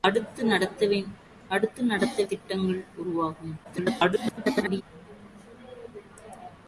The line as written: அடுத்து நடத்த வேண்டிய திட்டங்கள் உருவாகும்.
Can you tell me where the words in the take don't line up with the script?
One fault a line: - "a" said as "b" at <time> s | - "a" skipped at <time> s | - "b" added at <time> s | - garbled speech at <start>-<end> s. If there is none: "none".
- "வேண்டிய" skipped at 2.2 s
- garbled speech at 3.6-4.8 s